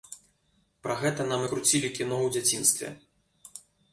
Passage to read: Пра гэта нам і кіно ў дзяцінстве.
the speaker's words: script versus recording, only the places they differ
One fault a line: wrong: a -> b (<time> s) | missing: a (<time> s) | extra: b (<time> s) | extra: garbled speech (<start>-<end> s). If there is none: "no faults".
extra: круцілі (1.5 s)